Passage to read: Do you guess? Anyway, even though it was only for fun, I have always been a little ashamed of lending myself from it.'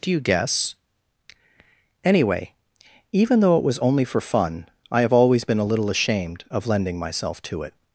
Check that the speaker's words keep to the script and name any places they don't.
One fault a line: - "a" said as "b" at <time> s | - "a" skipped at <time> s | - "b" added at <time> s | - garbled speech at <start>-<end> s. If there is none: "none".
- "from" said as "to" at 7.4 s